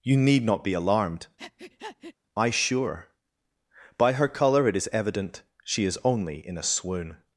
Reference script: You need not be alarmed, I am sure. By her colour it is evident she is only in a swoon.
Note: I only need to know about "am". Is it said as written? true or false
false